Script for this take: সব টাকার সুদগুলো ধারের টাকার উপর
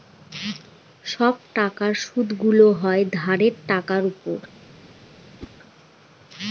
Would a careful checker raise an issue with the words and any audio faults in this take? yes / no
yes